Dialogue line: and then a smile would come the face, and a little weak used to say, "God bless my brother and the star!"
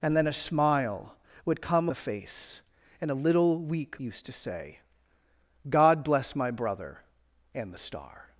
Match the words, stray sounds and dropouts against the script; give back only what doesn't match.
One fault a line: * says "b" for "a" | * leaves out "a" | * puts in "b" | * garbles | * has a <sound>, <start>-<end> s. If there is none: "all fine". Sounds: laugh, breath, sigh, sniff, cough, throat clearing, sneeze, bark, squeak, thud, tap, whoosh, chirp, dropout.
all fine